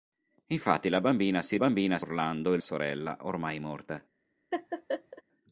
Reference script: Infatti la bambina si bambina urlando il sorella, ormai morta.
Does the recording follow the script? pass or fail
pass